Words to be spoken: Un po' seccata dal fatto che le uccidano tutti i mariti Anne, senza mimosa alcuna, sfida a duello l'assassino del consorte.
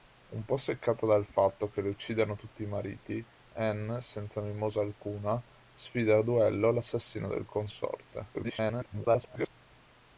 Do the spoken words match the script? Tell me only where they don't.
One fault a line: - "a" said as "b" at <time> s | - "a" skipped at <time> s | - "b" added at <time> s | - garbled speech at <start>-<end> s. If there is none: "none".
- garbled speech at 8.3-9.5 s